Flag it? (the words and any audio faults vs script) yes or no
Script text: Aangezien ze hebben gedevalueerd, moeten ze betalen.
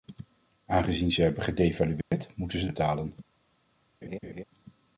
yes